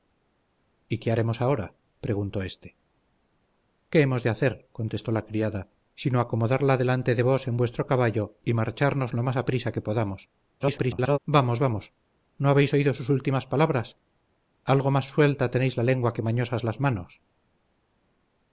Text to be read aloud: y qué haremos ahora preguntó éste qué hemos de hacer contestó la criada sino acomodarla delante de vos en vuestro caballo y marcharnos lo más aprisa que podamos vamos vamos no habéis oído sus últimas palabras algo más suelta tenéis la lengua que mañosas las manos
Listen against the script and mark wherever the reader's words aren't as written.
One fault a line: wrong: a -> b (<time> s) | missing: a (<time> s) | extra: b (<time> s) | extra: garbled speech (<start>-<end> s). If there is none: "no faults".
extra: garbled speech (10.6-11.2 s)